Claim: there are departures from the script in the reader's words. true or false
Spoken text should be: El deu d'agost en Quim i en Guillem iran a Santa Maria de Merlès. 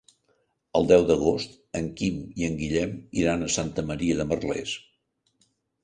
false